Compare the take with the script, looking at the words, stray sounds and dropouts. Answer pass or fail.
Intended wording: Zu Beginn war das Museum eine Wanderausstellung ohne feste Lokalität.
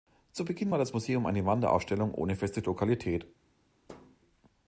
fail